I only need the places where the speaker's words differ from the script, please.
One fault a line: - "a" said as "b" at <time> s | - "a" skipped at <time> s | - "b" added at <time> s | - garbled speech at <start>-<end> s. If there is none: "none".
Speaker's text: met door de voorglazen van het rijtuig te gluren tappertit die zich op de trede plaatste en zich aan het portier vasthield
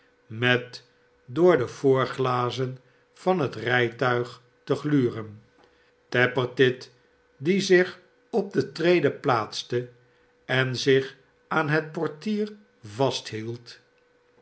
none